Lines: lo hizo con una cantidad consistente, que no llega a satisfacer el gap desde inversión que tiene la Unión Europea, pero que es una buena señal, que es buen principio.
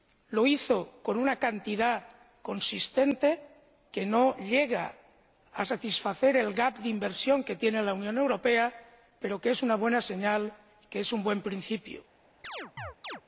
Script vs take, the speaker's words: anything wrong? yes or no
yes